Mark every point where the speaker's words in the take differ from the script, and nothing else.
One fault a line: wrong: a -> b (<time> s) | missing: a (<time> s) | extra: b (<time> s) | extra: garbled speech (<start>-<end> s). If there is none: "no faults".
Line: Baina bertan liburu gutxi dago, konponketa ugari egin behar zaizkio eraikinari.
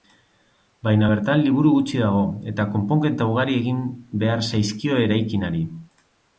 extra: eta (2.5 s)